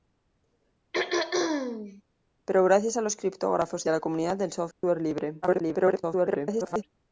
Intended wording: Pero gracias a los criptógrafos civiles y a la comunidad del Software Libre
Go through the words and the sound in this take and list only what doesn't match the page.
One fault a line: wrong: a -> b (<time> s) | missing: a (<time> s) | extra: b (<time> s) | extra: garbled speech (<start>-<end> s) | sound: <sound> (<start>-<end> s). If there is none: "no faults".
sound: throat clearing (0.9-2.0 s)
missing: civiles (3.9 s)
sound: dropout (4.7-4.8 s)
extra: garbled speech (5.4-6.8 s)